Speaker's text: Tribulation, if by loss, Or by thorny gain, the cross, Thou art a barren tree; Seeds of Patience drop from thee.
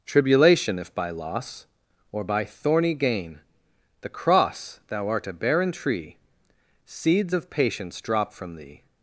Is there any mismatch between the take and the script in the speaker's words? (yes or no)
no